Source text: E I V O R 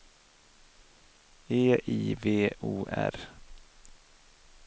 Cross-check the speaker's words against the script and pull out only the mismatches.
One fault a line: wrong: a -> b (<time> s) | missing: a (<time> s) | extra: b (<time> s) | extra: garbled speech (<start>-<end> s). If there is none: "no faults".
no faults